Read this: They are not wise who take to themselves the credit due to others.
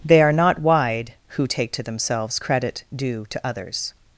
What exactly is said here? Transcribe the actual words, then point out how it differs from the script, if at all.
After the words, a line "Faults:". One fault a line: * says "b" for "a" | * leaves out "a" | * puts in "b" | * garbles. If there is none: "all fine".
They are not wide who take to themselves credit due to others.
Faults:
* says "wide" for "wise"
* leaves out "the"